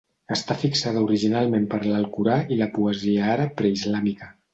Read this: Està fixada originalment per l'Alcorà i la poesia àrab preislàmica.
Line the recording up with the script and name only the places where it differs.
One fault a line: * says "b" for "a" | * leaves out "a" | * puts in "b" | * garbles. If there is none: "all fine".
all fine